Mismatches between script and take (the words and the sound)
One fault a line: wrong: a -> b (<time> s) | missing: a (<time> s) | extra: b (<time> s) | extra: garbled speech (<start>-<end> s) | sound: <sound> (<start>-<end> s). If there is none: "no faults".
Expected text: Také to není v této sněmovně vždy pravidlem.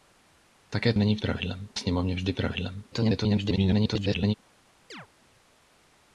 missing: to (0.9 s)
wrong: této -> pravidlem (1.2 s)
extra: garbled speech (2.9-4.3 s)
sound: chirp (4.9-5.1 s)